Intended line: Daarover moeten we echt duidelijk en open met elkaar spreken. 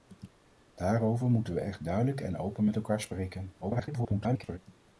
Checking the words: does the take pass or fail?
fail